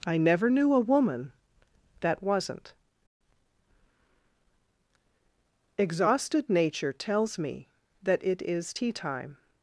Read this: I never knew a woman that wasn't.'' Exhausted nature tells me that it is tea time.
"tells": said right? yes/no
yes